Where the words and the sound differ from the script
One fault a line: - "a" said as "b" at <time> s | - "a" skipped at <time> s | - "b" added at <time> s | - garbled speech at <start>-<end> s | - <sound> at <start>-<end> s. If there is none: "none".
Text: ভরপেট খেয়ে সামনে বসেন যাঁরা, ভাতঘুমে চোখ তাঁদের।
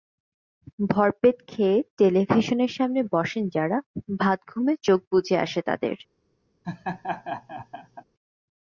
- "টেলিভিশনের" added at 2.0 s
- "বুজে আসে" added at 5.1 s
- laugh at 6.6-8.0 s